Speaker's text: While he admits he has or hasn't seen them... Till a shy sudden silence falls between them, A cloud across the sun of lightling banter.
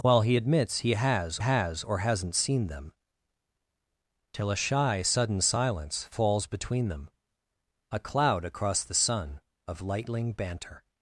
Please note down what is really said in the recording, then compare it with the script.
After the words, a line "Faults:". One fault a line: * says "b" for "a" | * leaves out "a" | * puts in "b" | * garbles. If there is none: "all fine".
While he admits he has has or hasn't seen them... Till a shy sudden silence falls between them, A cloud across the sun of lightling banter.
Faults:
* puts in "has"